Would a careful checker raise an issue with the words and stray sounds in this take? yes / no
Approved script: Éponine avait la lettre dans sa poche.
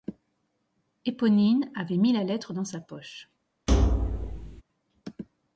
yes